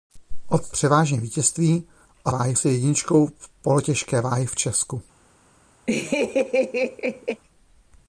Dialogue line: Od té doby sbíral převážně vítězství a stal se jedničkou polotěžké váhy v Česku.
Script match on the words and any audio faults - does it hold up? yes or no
no